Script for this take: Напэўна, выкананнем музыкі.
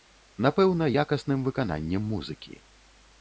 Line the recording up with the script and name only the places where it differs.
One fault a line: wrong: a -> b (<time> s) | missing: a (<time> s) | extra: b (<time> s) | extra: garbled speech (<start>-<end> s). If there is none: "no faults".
extra: якасным (1.0 s)